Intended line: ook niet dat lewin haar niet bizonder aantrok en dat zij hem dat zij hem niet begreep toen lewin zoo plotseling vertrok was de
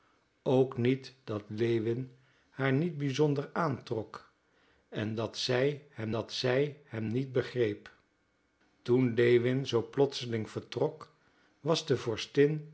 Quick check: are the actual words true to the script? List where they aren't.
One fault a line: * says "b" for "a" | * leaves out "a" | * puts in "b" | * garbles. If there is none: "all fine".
all fine